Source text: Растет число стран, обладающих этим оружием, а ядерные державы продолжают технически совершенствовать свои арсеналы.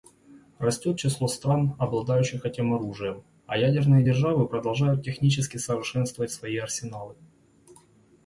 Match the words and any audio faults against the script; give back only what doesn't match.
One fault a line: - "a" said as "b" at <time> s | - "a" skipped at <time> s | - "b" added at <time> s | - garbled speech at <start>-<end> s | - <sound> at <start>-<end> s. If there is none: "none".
none